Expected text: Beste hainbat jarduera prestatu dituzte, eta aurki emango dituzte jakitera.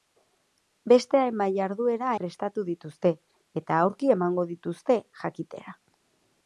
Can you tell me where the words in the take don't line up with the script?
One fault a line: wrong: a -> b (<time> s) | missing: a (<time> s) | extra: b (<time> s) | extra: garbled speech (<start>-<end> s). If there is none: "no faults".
no faults